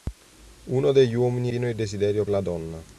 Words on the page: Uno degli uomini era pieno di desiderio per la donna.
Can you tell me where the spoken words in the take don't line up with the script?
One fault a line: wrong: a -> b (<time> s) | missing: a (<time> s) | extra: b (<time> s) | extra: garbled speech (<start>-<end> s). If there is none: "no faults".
missing: era (1.5 s)
missing: per (2.3 s)